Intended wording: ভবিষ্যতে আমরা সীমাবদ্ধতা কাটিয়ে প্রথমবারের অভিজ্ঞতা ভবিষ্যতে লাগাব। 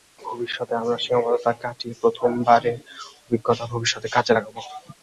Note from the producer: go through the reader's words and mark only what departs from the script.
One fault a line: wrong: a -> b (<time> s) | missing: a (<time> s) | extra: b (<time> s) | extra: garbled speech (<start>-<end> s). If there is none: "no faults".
extra: কাজে (4.1 s)